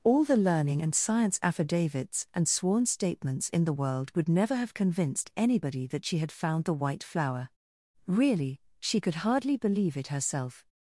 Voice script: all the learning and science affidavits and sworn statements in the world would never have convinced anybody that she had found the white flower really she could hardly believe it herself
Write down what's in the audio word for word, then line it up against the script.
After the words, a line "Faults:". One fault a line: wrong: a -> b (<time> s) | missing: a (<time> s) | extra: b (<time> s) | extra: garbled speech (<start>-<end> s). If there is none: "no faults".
all the learning and science affidavits and sworn statements in the world would never have convinced anybody that she had found the white flower really she could hardly believe it herself
Faults:
no faults